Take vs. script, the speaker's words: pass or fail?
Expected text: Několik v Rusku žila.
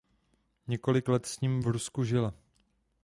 fail